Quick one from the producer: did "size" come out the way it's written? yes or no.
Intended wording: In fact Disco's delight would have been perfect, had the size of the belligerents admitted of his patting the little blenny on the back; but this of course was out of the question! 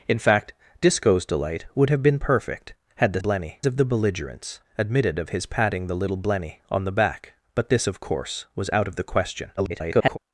no